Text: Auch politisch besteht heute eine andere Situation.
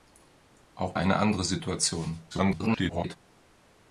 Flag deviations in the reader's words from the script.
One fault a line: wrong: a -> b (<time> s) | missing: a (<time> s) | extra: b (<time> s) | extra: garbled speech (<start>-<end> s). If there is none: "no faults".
missing: politisch besteht heute (0.9 s)
extra: garbled speech (2.3-3.2 s)